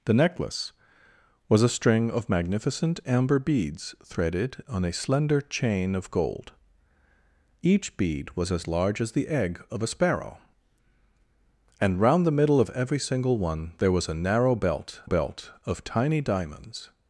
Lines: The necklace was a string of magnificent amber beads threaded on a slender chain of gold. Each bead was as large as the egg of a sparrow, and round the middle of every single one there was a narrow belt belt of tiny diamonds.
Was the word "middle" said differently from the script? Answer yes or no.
no